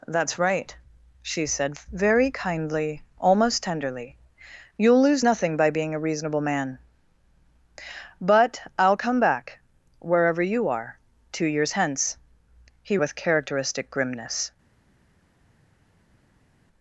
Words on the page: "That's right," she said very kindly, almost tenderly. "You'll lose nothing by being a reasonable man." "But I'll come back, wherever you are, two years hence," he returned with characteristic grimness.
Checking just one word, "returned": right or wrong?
wrong